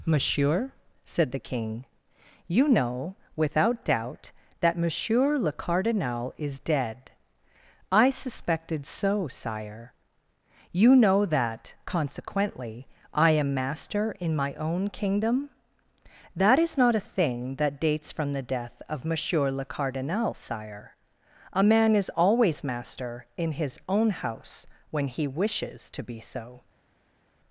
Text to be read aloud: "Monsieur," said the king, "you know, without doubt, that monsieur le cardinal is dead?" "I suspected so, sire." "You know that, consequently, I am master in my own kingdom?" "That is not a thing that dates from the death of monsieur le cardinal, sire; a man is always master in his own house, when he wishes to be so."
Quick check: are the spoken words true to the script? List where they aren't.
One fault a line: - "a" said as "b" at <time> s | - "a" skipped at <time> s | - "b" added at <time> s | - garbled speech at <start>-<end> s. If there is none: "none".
none